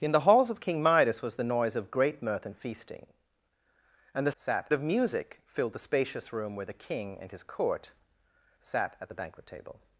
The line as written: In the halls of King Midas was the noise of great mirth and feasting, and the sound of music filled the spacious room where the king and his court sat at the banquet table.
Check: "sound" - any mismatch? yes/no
yes